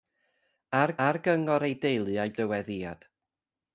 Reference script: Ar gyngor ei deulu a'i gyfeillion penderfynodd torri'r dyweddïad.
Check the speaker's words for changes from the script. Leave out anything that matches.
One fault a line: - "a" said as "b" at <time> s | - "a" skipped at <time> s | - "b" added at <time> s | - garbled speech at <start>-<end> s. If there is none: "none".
- "ar" added at 1.0 s
- "gyfeillion penderfynodd torri'r" skipped at 2.3 s